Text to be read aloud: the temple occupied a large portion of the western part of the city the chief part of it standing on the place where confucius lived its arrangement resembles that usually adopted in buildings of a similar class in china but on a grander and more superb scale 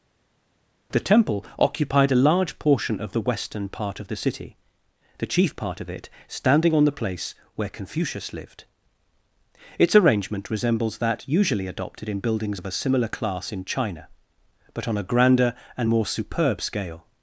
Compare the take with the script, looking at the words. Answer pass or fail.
pass